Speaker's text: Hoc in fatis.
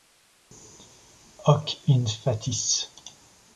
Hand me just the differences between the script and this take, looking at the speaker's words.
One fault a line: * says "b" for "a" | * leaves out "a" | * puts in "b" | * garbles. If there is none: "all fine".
all fine